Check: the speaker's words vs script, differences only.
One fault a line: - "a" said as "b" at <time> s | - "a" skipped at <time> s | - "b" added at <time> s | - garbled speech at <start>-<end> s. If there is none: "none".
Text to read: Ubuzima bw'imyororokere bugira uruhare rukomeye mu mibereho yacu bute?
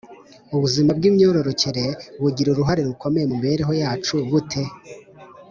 none